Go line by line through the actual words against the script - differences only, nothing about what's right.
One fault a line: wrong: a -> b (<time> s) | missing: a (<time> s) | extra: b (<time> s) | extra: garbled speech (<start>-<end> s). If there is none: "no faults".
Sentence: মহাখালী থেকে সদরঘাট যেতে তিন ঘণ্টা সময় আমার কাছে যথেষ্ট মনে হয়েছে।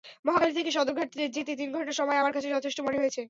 no faults